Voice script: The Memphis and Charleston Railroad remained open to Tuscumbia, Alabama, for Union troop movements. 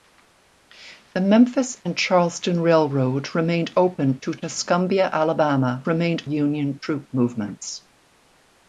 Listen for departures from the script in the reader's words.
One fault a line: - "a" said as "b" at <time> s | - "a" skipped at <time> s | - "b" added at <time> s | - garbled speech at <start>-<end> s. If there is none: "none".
- "for" said as "remained" at 5.9 s